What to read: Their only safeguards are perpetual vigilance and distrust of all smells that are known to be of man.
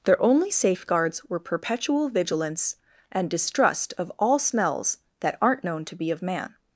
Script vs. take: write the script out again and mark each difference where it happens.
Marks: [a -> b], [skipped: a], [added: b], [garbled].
Their only safeguards [are -> were] perpetual vigilance and distrust of all smells that [are -> aren't] known to be of man.